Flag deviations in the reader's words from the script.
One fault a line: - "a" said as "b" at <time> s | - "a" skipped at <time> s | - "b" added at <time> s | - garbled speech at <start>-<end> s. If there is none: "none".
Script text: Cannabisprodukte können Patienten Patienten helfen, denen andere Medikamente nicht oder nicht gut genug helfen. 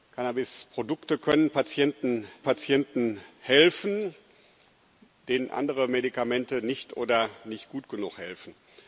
none